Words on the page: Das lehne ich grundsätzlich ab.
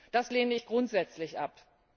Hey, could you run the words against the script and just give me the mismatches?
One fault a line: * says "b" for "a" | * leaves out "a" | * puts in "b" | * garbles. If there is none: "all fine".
all fine